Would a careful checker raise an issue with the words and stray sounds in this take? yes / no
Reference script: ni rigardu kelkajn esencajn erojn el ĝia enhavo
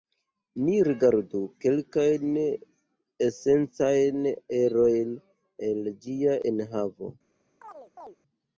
yes